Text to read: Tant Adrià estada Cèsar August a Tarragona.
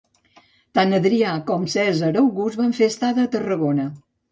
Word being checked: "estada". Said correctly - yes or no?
no